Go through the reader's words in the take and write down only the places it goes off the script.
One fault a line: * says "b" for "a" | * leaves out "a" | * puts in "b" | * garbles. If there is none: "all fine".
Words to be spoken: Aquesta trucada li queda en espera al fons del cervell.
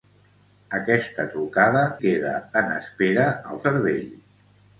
* leaves out "li"
* leaves out "fons del"